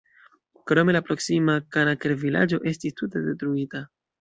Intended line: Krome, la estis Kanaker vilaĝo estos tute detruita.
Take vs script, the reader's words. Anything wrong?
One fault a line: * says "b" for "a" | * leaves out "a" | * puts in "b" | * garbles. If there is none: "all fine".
* says "proksima" for "estis"
* says "estis" for "estos"